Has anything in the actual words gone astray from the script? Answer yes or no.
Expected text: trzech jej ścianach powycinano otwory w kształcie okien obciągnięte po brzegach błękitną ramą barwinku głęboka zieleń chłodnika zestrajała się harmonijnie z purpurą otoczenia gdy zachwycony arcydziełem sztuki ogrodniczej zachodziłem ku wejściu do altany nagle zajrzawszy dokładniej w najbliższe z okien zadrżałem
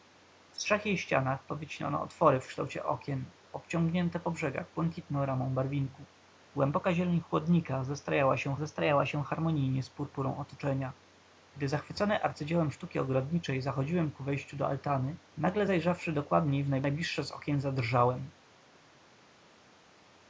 yes